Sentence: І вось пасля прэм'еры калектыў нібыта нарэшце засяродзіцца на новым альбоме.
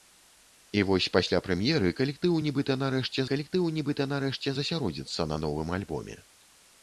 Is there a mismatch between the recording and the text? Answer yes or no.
yes